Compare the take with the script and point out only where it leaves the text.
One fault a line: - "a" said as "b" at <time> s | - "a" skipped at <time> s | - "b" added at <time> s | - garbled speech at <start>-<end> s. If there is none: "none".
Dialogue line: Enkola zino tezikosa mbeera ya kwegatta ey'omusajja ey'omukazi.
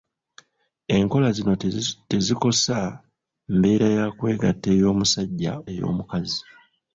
none